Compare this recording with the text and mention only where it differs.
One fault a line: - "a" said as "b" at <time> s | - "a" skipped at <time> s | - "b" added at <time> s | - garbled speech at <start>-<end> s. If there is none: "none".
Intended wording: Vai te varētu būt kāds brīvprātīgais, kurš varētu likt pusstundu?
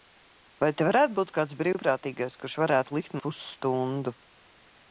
none